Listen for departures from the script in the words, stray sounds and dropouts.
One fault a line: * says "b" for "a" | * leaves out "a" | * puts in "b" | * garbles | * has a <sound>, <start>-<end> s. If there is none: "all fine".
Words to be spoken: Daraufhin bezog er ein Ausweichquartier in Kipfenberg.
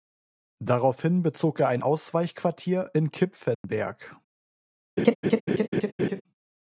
* has a dropout, 3.5-3.6 s
* has a laugh, 5.0-6.2 s